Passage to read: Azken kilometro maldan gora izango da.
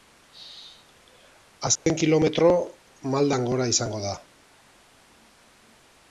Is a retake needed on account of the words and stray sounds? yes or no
yes